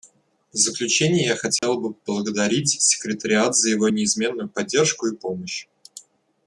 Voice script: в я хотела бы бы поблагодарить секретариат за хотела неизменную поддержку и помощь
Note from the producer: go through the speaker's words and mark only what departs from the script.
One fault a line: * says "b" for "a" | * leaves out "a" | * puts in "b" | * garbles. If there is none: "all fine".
* puts in "заключение"
* leaves out "бы"
* says "его" for "хотела"